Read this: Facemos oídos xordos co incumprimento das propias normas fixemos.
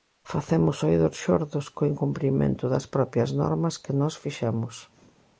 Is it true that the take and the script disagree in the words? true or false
true